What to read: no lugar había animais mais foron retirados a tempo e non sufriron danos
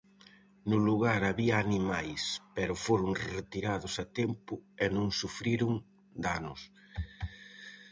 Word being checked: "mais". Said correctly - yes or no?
no